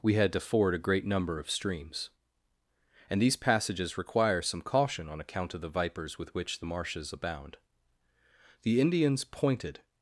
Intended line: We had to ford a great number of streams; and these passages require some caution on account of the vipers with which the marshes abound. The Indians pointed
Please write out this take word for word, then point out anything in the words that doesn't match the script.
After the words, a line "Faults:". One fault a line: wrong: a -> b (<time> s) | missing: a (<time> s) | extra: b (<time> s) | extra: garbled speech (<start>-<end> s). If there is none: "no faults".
We had to ford a great number of streams; and these passages require some caution on account of the vipers with which the marshes abound. The Indians pointed
Faults:
no faults